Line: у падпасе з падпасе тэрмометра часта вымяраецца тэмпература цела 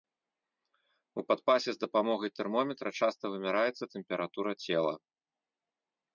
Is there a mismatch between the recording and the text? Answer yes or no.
yes